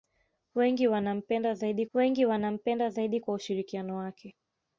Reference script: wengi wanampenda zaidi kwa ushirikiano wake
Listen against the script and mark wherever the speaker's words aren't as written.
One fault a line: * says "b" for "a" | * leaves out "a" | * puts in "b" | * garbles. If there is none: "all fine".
* puts in "wengi wanampenda zaidi"